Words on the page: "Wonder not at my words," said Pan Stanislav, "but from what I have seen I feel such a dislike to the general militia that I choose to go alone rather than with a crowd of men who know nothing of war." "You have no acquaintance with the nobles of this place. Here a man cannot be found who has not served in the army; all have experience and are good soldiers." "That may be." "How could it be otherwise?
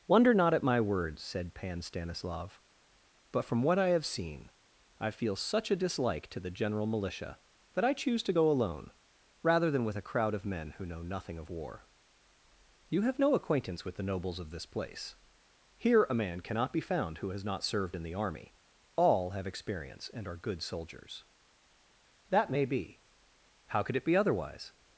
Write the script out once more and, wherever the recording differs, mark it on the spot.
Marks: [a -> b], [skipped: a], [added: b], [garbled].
"Wonder not at my words," said Pan Stanislav, "but from what I have seen I feel such a dislike to the general militia that I choose to go alone rather than with a crowd of men who know nothing of war." "You have no acquaintance with the nobles of this place. Here a man cannot be found who has not served in the army; all have experience and are good soldiers." "That may be." "How could it be otherwise?